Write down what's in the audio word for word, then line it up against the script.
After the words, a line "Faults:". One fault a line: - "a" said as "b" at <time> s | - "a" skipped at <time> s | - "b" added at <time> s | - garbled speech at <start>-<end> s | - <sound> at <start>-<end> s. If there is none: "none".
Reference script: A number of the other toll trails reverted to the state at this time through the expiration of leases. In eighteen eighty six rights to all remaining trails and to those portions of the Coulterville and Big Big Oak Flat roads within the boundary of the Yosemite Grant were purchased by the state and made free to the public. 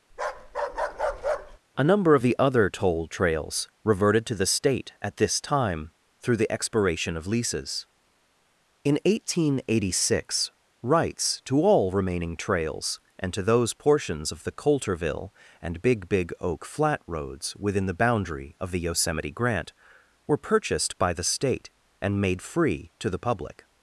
A number of the other toll trails reverted to the state at this time through the expiration of leases. In eighteen eighty six rights to all remaining trails and to those portions of the Coulterville and Big Big Oak Flat roads within the boundary of the Yosemite Grant were purchased by the state and made free to the public.
Faults:
- bark at 0.1-1.6 s